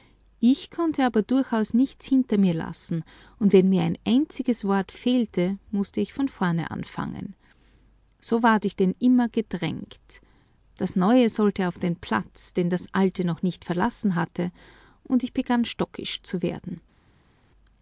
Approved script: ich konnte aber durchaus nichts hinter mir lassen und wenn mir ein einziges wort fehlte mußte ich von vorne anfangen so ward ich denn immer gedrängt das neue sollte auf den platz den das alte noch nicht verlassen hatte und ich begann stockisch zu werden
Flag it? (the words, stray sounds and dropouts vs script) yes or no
no